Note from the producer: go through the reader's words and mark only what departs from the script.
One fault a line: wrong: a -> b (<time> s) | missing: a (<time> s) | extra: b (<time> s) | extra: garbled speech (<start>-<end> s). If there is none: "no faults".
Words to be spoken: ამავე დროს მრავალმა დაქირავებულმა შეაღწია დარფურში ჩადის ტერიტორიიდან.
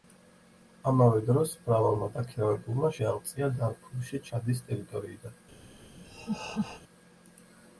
no faults